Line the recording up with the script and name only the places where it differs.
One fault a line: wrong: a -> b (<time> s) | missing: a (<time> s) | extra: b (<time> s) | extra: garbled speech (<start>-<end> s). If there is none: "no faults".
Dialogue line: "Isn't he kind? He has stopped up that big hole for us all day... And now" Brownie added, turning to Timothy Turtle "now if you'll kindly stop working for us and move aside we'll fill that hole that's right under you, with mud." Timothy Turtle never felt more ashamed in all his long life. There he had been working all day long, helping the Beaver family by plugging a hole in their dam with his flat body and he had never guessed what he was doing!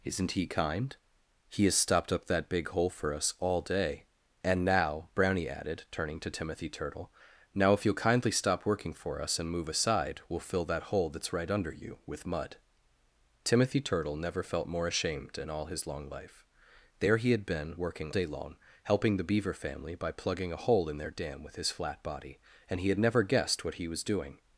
missing: all (18.1 s)